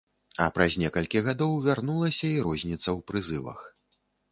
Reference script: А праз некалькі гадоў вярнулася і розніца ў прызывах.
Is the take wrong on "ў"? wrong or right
right